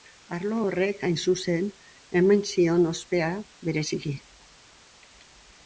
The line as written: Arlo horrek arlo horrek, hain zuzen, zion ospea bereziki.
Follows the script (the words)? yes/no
no